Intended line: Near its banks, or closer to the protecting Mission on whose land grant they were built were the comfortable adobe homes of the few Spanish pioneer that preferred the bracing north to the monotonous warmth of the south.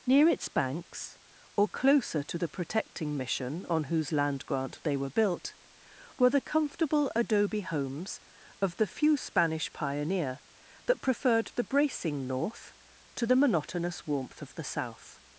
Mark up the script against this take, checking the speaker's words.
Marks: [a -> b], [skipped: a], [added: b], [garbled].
Near its banks, or closer to the protecting Mission on whose land grant they were built were the comfortable adobe homes of the few Spanish pioneer that preferred the bracing north to the monotonous warmth of the south.